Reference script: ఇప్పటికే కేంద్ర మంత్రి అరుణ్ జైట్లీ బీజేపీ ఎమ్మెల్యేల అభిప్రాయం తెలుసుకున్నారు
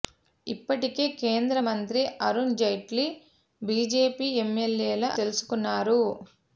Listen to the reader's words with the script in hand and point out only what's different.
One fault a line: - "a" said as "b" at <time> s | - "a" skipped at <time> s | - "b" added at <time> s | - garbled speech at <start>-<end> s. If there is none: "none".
- "అభిప్రాయం" skipped at 5.0 s